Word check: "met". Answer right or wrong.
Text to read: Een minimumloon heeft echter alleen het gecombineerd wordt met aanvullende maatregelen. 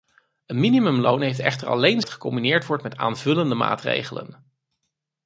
right